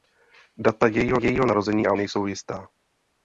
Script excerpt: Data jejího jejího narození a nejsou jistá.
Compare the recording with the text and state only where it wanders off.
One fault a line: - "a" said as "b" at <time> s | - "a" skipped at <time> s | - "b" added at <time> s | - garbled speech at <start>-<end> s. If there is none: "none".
none